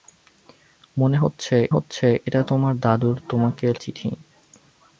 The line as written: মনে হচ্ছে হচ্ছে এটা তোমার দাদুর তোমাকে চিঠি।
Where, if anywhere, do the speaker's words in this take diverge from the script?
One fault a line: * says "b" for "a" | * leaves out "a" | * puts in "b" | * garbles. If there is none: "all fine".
all fine